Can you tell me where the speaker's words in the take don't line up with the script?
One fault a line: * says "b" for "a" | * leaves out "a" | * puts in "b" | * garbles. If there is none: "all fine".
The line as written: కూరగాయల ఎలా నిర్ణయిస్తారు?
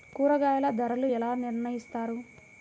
* puts in "ధరలు"